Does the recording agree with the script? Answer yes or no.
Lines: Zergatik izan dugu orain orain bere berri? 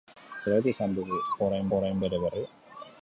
yes